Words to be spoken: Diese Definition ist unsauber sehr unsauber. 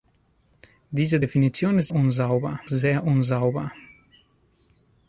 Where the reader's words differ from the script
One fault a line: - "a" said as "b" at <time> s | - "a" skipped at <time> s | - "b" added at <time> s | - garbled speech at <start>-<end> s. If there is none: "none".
none